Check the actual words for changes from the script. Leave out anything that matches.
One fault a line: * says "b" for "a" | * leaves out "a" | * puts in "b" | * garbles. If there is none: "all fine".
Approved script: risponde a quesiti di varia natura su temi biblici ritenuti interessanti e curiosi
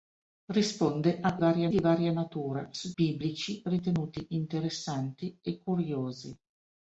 * says "varia" for "quesiti"
* leaves out "temi"